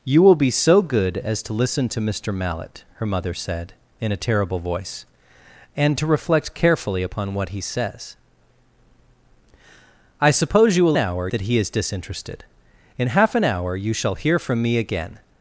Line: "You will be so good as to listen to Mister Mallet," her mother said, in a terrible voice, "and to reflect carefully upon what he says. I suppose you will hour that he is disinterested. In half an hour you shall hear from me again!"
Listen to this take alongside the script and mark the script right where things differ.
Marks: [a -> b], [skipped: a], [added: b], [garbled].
"You will be so good as to listen to Mister Mallet," her mother said, in a terrible voice, "and to reflect carefully upon what he says. I suppose you will hour that he is disinterested. In half an hour you shall hear from me again!"